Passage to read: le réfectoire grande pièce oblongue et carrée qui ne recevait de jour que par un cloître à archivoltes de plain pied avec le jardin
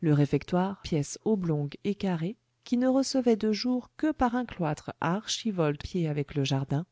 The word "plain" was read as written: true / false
false